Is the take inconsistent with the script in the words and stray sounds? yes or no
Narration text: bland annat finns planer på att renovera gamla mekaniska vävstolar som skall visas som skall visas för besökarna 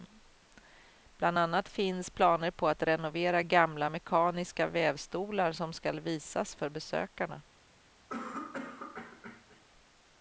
yes